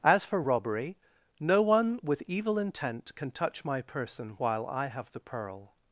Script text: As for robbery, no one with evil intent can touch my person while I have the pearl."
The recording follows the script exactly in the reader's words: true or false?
true